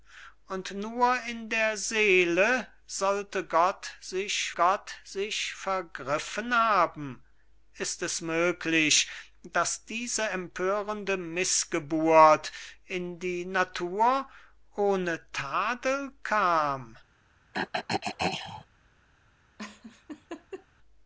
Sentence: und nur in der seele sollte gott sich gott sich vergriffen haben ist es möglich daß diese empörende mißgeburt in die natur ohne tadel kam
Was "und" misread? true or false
false